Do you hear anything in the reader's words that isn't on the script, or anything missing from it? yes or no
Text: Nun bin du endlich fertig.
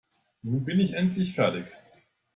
yes